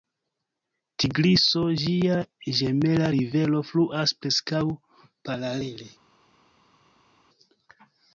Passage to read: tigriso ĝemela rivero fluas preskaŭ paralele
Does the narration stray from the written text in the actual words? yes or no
yes